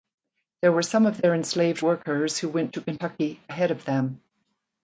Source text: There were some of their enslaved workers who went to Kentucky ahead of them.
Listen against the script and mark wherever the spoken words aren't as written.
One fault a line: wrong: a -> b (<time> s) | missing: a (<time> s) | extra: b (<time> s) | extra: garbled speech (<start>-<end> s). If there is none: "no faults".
no faults